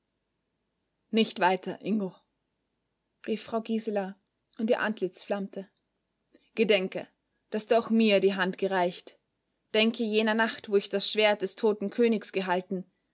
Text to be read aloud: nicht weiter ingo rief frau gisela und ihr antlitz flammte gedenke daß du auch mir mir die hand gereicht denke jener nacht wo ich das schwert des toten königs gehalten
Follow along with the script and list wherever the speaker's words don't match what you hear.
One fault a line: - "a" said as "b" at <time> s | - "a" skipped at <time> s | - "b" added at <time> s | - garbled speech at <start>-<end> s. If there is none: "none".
- "mir" skipped at 8.2 s